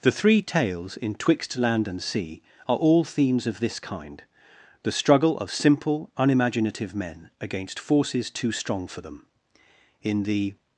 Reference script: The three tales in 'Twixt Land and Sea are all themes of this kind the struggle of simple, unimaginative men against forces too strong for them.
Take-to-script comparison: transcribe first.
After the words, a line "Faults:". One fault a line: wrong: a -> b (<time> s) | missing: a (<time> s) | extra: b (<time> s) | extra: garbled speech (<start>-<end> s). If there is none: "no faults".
The three tales in 'Twixt Land and Sea are all themes of this kind the struggle of simple, unimaginative men against forces too strong for them. In The
Faults:
extra: In The (10.0 s)